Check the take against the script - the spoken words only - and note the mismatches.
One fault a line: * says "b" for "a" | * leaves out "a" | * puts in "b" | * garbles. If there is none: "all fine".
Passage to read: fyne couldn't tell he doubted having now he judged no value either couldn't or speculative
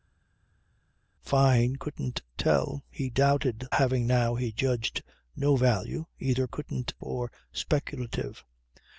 all fine